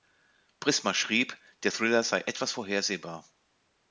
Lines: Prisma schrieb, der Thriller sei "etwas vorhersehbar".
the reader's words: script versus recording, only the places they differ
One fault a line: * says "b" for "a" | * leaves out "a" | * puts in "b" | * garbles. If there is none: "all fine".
all fine